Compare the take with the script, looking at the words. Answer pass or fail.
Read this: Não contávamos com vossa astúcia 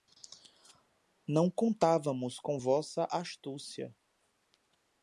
pass